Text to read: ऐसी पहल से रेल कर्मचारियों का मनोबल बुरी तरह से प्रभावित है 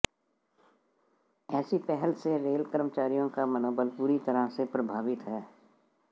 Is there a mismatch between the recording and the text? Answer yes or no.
no